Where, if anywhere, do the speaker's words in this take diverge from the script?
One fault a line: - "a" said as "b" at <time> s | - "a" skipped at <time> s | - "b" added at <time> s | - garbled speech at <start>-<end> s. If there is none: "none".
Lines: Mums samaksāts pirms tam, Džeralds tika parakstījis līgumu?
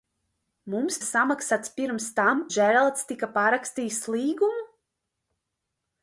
none